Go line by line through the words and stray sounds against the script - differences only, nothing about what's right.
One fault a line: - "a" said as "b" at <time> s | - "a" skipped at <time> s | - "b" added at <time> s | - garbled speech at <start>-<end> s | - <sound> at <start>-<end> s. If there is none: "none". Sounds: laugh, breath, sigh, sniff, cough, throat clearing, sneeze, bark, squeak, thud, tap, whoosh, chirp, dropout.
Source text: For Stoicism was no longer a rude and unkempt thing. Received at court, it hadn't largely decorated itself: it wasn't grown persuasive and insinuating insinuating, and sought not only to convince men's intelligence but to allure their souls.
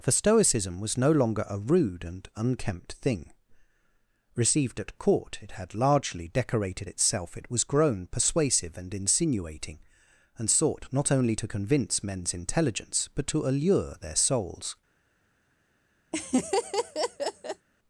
- "hadn't" said as "had" at 5.5 s
- "wasn't" said as "was" at 7.5 s
- "insinuating" skipped at 9.8 s
- laugh at 16.1-17.7 s